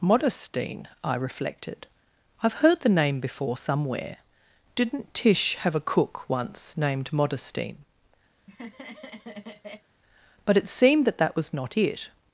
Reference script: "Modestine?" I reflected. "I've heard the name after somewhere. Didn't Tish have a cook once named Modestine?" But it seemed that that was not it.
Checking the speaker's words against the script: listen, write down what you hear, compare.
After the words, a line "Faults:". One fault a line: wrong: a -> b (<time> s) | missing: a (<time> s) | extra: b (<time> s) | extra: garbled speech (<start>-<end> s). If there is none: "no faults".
"Modestine?" I reflected. "I've heard the name before somewhere. Didn't Tish have a cook once named Modestine?" But it seemed that that was not it.
Faults:
wrong: after -> before (3.2 s)